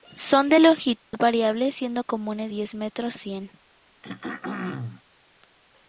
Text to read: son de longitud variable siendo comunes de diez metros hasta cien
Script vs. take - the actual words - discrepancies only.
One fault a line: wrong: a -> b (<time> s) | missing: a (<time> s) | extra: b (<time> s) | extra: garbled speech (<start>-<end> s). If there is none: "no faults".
missing: de (2.5 s)
missing: hasta (3.2 s)